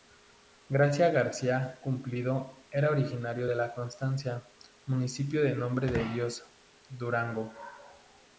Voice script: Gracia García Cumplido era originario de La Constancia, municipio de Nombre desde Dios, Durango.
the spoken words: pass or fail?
fail